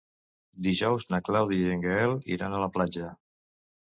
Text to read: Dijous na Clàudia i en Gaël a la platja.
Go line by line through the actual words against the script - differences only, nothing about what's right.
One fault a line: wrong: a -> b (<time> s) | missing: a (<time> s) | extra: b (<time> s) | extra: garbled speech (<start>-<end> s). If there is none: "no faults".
extra: iran (2.4 s)